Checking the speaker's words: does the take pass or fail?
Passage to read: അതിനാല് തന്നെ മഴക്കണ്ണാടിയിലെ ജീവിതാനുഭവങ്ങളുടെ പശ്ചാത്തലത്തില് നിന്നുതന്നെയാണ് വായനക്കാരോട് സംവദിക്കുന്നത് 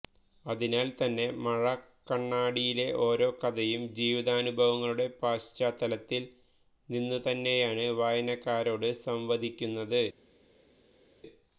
fail